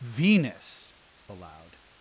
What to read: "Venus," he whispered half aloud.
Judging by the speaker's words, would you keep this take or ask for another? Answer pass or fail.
fail